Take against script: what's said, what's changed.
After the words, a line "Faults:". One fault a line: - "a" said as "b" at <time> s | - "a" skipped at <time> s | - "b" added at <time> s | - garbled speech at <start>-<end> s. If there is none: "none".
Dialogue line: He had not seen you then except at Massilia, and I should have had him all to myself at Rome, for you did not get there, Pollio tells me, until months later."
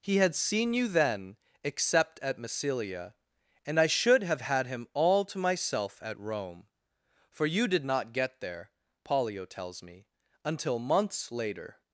He had seen you then except at Massilia, and I should have had him all to myself at Rome, for you did not get there, Pollio tells me, until months later."
Faults:
- "not" skipped at 0.3 s